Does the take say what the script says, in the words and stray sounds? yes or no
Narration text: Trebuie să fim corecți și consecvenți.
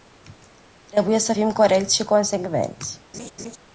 no